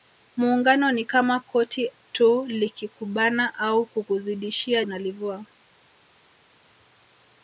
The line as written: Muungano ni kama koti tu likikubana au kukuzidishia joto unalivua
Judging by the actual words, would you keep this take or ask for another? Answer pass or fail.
fail